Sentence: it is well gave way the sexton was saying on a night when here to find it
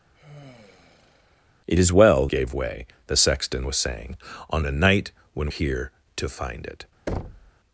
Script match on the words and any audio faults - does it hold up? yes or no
no